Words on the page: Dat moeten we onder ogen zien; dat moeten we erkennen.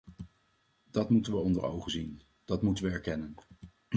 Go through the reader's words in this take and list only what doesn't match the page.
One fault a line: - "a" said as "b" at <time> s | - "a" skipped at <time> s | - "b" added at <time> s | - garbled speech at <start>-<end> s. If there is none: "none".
none